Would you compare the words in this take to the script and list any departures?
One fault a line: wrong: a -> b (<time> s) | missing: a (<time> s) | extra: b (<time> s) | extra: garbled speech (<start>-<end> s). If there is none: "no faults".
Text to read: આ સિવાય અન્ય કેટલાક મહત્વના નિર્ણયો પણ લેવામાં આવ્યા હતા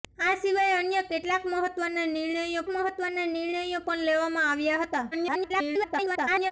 extra: મહત્વના નિર્ણયો (2.7 s)
extra: garbled speech (5.1-6.5 s)